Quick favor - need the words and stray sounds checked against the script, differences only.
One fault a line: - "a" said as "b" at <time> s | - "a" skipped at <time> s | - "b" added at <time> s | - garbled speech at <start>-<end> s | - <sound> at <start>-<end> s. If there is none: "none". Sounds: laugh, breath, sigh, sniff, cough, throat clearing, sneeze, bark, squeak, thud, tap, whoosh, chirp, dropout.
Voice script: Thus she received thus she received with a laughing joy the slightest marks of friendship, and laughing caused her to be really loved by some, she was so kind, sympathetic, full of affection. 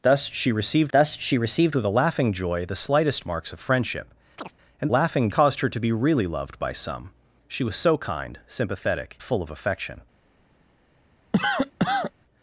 - chirp at 4.4-4.5 s
- cough at 11.3-12.1 s